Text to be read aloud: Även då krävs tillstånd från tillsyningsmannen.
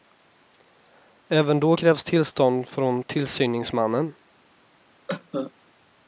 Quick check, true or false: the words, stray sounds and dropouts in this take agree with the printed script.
false